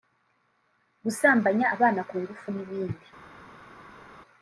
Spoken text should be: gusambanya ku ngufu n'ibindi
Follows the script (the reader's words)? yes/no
no